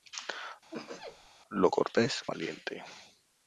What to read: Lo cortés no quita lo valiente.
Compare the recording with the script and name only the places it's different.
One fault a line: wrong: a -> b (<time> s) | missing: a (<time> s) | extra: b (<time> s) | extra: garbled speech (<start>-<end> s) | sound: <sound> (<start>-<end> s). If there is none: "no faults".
sound: sneeze (0.7-1.3 s)
missing: no quita lo (2.2 s)